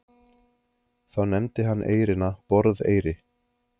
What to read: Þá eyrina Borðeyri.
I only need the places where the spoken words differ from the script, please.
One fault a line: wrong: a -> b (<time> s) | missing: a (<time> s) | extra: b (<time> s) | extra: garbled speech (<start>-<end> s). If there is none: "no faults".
extra: nefndi hann (1.3 s)